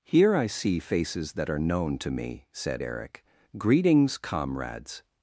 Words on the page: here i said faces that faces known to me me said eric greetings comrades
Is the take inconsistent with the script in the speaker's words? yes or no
yes